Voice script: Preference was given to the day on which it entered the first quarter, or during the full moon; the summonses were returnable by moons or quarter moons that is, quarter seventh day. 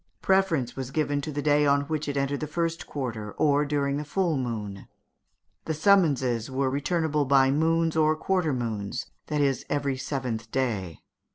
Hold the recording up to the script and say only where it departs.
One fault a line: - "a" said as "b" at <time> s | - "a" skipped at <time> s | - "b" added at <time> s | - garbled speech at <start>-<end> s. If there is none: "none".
- "quarter" said as "every" at 9.7 s